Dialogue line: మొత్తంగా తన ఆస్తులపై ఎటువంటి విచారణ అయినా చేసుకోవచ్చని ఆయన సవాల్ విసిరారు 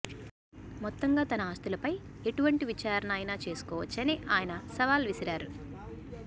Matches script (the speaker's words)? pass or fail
pass